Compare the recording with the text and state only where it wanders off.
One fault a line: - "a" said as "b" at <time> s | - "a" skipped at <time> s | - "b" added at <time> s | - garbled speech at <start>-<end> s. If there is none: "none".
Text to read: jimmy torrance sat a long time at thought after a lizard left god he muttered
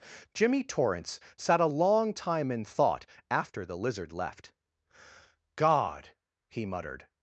- "at" said as "in" at 2.5 s
- "a" said as "the" at 3.6 s